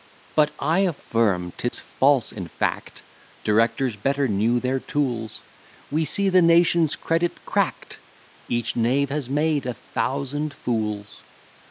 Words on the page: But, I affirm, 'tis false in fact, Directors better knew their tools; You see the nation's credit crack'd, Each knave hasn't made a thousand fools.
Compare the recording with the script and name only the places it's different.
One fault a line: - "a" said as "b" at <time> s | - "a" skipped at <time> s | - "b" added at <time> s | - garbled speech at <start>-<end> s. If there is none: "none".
- "You" said as "We" at 5.9 s
- "hasn't" said as "has" at 9.1 s